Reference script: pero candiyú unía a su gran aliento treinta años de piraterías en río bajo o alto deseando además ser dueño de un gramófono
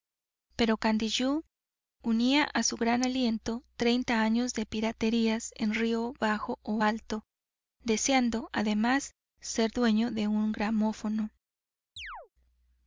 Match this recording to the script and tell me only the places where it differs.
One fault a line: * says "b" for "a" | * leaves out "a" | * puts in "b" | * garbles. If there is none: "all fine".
all fine